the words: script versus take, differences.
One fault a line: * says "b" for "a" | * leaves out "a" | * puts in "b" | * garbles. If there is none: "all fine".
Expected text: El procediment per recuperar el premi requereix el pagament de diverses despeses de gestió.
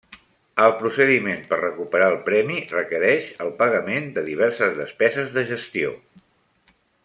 all fine